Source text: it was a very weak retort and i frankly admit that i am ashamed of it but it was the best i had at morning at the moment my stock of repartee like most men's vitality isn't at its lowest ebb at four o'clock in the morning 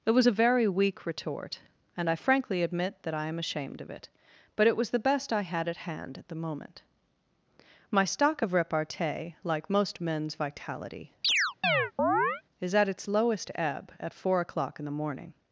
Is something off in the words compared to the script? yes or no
yes